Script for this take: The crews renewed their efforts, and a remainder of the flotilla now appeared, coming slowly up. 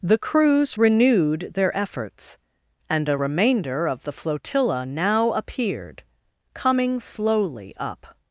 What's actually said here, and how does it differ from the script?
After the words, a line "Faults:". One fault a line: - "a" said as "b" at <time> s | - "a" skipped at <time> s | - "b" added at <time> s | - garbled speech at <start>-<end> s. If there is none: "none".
The crews renewed their efforts, and a remainder of the flotilla now appeared, coming slowly up.
Faults:
none